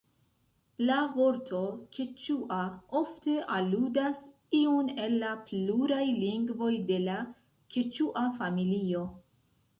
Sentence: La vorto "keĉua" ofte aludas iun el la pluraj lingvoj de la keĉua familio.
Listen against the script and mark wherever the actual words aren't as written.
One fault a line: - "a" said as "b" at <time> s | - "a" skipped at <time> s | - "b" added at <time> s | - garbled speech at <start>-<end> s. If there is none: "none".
none